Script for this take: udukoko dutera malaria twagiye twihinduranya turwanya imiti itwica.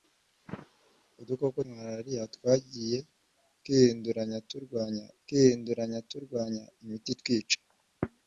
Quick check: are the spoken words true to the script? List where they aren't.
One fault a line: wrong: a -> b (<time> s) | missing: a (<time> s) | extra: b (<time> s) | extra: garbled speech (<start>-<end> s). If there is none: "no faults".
missing: dutera (1.6 s)
extra: twihinduranya turwanya (5.2 s)